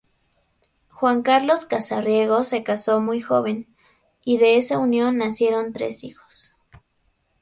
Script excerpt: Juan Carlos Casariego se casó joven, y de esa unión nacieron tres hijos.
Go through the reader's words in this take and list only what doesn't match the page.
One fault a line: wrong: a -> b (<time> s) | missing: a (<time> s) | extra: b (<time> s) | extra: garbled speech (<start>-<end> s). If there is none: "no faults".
extra: muy (3.0 s)